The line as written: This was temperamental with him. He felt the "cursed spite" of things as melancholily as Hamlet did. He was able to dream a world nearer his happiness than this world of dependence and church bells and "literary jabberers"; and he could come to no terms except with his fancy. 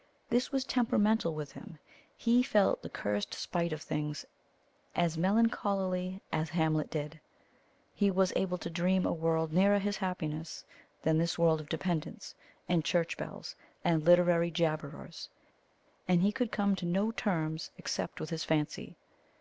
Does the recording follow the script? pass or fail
pass